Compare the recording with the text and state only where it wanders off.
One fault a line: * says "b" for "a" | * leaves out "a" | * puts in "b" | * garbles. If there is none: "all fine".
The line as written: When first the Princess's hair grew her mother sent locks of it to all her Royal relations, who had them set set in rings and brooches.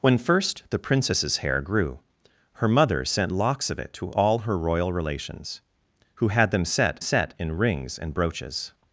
all fine